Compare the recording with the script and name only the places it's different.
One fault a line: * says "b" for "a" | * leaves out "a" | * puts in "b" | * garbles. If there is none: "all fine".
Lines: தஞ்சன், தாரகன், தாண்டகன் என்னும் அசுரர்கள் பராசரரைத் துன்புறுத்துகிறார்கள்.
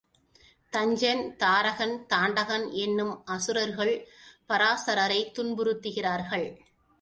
all fine